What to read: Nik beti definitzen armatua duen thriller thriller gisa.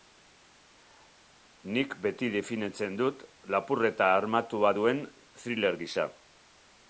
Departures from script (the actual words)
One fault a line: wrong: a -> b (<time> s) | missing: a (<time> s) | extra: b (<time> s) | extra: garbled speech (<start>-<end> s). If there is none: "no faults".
extra: dut lapurreta (3.0 s)
missing: thriller (5.8 s)